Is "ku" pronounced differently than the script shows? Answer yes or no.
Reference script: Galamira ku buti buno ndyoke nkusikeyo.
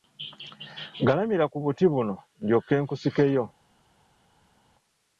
no